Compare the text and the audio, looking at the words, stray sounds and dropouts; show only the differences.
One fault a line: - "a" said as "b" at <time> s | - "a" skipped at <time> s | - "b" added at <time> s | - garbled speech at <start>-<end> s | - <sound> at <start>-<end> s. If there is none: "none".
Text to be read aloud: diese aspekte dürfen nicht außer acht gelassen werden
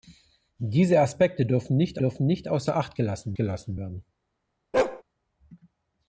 - "dürfen nicht" added at 2.0 s
- "gelassen" added at 3.4 s
- bark at 4.7-5.0 s